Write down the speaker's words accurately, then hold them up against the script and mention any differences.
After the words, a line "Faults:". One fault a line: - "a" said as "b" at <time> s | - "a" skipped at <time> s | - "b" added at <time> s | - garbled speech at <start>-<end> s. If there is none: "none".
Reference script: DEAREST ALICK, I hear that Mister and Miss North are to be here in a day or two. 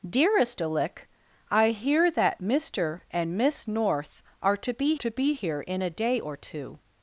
DEAREST ALICK, I hear that Mister and Miss North are to be to be here in a day or two.
Faults:
- "to be" added at 4.9 s